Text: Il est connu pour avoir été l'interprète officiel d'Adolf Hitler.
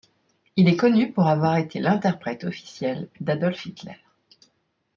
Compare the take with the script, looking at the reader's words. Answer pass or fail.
pass